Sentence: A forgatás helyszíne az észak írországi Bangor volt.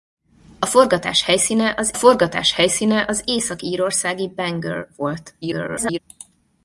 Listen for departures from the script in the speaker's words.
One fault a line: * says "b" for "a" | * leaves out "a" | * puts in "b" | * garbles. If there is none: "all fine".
* puts in "forgatás helyszíne az"
* garbles